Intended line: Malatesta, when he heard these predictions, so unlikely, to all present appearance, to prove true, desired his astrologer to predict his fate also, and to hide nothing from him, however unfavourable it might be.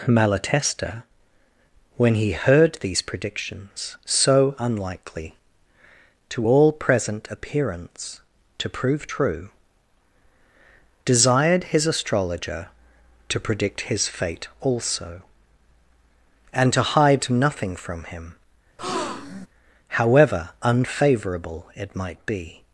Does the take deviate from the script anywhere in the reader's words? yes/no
no